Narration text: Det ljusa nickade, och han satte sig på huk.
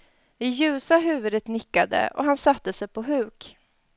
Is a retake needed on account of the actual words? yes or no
yes